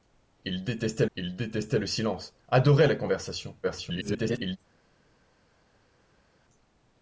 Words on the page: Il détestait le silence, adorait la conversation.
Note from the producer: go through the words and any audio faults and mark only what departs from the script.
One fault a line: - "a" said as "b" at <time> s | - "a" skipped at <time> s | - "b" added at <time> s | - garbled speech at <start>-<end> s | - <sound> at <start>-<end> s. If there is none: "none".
- "il détestait" added at 1.2 s
- garbled speech at 3.6-4.6 s